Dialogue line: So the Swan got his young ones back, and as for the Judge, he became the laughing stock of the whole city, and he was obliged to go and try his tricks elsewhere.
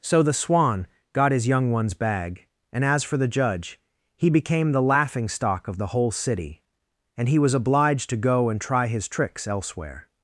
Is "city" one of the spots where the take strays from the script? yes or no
no